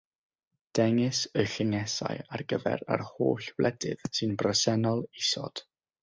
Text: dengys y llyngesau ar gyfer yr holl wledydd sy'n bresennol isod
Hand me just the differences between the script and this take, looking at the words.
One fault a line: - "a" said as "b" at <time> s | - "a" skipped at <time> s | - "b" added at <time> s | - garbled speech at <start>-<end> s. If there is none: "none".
none